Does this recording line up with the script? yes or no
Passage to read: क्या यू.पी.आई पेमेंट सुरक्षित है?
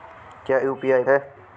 no